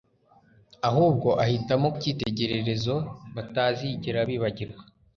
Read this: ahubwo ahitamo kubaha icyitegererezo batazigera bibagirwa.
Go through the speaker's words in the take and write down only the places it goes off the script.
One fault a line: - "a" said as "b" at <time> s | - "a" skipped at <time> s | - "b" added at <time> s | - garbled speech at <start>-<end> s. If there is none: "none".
- "kubaha" skipped at 1.9 s